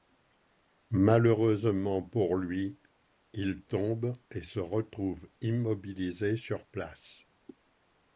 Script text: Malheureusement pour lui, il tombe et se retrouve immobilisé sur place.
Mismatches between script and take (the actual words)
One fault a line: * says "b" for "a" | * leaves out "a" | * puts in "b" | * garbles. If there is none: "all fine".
all fine